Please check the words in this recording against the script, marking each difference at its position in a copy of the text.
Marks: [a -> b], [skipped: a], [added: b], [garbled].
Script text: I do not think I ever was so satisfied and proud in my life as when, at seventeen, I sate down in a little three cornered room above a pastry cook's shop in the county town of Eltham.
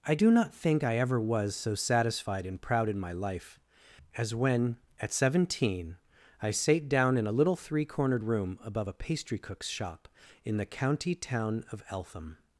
I do not think I ever was so satisfied and proud in my life as when, at seventeen, I sate down in a little three cornered room above a pastry cook's shop in the county town of Eltham.